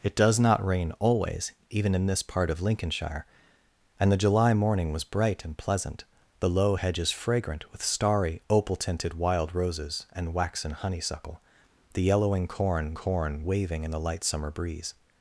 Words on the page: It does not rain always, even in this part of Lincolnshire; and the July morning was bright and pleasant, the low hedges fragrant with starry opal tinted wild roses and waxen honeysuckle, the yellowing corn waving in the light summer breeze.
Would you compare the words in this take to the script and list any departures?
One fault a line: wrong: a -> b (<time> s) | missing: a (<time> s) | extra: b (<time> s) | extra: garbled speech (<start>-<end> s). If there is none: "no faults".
extra: corn (12.9 s)